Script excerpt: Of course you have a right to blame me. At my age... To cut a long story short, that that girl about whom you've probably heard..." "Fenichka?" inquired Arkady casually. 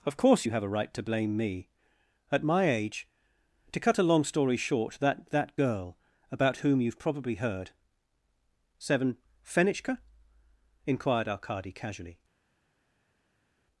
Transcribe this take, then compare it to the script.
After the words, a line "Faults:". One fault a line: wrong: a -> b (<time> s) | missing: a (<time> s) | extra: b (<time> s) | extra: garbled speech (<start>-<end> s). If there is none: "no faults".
Of course you have a right to blame me. At my age... To cut a long story short, that that girl about whom you've probably heard..." seven "Fenichka?" inquired Arkady casually.
Faults:
extra: seven (8.8 s)